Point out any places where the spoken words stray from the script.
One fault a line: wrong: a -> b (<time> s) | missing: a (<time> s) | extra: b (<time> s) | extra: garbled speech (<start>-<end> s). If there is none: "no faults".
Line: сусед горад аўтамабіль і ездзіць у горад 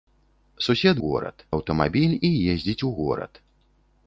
no faults